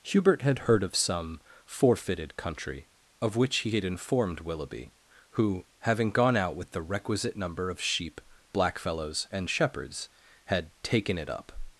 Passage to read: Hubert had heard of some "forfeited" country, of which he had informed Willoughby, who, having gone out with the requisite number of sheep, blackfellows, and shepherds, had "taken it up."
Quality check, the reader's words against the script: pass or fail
pass